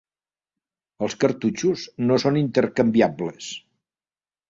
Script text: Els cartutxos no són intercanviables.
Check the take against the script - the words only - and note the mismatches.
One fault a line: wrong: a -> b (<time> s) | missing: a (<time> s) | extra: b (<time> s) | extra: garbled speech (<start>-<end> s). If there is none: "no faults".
no faults